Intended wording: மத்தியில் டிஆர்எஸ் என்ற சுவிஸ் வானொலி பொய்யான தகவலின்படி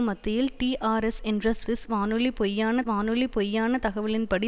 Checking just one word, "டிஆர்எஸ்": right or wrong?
right